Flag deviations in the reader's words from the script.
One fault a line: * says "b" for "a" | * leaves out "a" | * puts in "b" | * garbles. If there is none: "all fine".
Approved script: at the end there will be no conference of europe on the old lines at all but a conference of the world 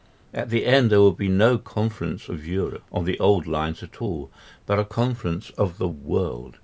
all fine